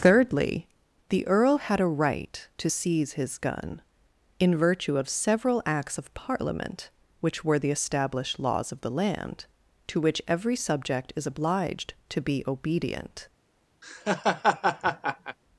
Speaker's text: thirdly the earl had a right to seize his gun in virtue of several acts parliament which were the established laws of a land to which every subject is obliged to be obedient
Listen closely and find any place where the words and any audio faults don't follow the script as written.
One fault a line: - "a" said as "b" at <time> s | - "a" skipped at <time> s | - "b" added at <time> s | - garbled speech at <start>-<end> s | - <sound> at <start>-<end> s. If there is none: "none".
- "of" added at 6.0 s
- "a" said as "the" at 8.8 s
- laugh at 13.8-15.4 s